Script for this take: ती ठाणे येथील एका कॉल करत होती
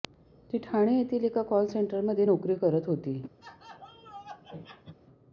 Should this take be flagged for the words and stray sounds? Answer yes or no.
yes